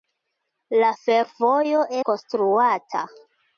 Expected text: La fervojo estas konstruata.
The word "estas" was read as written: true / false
false